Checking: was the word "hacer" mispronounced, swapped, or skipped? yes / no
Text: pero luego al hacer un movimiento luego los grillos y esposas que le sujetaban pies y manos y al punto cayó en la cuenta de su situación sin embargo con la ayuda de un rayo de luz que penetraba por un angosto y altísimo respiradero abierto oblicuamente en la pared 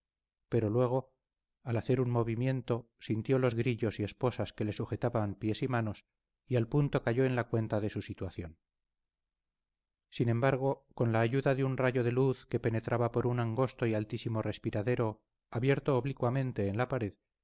no